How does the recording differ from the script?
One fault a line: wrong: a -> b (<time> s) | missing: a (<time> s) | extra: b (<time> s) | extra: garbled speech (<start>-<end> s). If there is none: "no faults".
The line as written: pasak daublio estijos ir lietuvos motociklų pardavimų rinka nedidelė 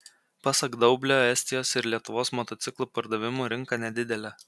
no faults